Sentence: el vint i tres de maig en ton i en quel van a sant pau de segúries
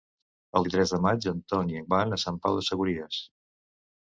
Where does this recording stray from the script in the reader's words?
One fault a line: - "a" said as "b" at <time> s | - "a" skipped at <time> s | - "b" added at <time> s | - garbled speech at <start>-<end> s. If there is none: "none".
- "vint" skipped at 0.6 s
- "quel" skipped at 1.9 s